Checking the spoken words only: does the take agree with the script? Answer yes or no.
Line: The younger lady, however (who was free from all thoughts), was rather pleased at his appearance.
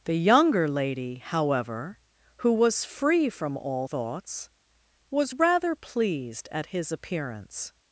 yes